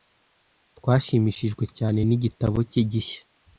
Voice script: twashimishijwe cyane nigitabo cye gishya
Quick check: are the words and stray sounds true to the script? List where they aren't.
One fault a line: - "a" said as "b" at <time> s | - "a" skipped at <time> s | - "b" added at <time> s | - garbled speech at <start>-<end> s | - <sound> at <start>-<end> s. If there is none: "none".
none